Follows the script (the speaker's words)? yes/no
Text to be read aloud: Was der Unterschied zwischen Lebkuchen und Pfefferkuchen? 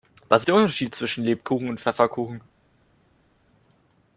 yes